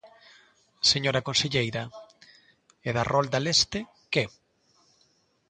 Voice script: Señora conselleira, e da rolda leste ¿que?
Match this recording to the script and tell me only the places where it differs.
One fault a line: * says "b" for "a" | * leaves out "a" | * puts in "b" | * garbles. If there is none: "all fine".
all fine